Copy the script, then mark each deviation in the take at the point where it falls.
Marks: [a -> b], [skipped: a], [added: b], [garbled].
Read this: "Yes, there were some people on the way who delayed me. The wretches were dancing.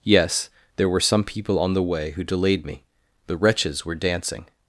"Yes, there were some people on the way who delayed me. The wretches were dancing.